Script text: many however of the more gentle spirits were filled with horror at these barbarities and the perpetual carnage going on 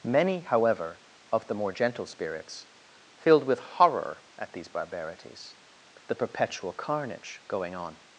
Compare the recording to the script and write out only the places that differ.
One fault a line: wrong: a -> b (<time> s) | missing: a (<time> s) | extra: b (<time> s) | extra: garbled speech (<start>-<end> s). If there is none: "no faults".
missing: were (2.7 s)
missing: and (5.6 s)